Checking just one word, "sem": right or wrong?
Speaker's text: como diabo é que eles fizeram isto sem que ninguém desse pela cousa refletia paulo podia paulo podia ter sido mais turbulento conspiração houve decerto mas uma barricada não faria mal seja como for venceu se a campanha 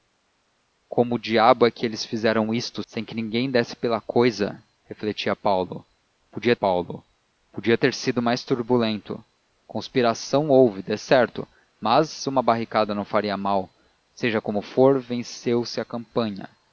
right